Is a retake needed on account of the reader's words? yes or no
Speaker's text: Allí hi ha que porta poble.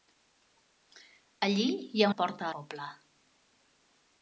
no